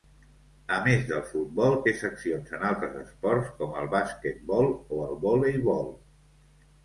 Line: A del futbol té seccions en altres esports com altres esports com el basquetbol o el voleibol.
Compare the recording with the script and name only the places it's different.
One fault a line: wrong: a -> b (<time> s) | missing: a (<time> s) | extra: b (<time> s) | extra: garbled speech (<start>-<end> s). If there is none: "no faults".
extra: més (0.8 s)
missing: altres esports com (3.8 s)